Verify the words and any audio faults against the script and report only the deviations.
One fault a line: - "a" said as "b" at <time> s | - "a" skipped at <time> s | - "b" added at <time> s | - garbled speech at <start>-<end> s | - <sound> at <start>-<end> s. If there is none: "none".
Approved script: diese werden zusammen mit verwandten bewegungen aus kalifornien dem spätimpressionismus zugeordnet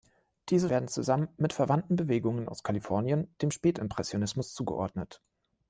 none